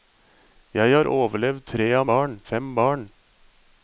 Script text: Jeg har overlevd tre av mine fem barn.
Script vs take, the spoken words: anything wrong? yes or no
yes